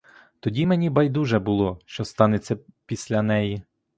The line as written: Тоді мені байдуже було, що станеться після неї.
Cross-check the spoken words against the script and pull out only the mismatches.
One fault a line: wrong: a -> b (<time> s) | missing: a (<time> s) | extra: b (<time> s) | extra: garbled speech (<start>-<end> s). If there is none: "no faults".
no faults